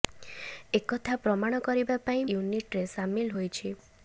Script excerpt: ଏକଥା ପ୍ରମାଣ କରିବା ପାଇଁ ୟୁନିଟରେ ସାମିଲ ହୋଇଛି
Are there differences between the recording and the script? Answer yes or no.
no